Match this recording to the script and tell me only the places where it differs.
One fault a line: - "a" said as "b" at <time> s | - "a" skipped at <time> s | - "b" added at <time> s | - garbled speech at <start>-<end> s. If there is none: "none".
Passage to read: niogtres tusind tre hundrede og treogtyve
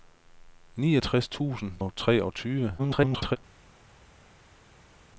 - "tre hundrede" skipped at 1.7 s
- garbled speech at 2.8-3.4 s